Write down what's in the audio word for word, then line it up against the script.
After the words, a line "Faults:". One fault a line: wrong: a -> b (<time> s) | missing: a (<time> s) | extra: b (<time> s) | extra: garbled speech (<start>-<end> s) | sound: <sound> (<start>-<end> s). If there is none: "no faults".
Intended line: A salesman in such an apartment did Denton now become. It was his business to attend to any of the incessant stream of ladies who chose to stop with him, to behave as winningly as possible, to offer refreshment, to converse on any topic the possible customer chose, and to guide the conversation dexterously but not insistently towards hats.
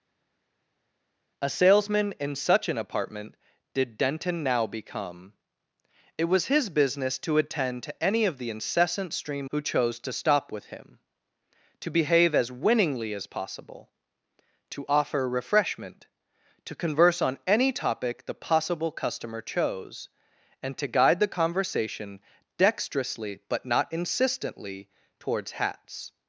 A salesman in such an apartment did Denton now become. It was his business to attend to any of the incessant stream who chose to stop with him, to behave as winningly as possible, to offer refreshment, to converse on any topic the possible customer chose, and to guide the conversation dexterously but not insistently towards hats.
Faults:
missing: of ladies (9.5 s)